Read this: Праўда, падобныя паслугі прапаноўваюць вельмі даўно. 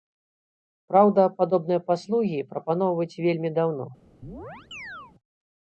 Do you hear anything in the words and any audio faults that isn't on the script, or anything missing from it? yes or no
yes